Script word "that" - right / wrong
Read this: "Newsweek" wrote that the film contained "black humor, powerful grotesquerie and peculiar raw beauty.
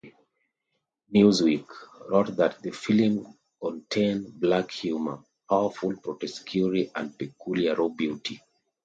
right